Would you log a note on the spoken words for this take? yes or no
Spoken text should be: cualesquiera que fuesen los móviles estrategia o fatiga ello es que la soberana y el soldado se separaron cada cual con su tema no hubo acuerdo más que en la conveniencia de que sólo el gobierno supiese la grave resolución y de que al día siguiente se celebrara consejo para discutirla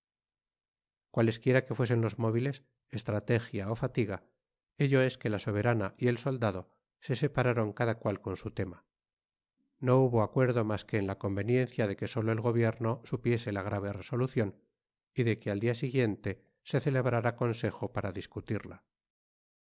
no